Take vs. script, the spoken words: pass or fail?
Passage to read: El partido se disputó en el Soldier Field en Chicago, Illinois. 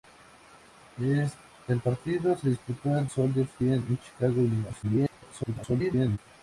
fail